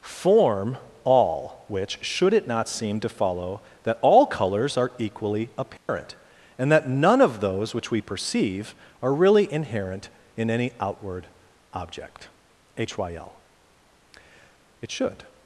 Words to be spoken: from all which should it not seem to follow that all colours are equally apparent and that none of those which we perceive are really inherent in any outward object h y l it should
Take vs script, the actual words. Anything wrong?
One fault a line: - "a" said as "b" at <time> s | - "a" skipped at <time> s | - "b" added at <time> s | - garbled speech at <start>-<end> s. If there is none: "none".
- "from" said as "form" at 0.0 s